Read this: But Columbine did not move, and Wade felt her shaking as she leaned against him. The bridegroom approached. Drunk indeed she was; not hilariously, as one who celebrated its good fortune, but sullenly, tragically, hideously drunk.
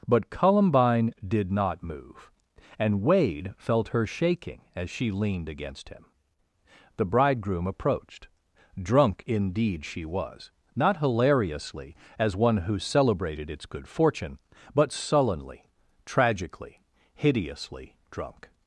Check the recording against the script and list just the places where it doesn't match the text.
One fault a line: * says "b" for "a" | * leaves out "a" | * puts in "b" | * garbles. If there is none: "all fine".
all fine